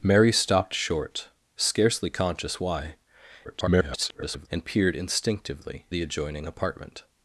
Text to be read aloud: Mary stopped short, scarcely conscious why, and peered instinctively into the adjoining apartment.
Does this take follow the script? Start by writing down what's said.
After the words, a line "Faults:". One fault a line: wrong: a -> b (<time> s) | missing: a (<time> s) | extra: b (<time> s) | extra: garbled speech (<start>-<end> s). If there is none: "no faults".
Mary stopped short, scarcely conscious why, [garbled] and peered instinctively the adjoining apartment.
Faults:
extra: garbled speech (3.4-4.5 s)
missing: into (5.9 s)